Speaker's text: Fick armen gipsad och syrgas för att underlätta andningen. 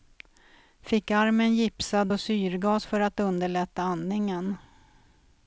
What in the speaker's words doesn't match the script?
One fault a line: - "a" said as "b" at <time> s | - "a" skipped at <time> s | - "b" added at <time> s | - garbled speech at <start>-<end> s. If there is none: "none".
none